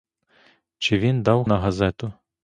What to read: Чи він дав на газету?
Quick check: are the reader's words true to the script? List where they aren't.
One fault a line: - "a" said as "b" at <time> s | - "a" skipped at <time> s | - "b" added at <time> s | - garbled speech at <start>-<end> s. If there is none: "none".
none